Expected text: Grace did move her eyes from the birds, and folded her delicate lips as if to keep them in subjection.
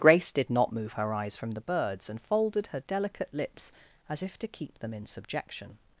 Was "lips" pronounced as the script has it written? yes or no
yes